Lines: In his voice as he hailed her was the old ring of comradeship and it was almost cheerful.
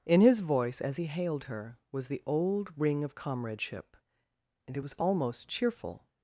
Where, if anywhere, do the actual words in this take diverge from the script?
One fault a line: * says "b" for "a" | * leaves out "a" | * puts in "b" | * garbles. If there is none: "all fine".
all fine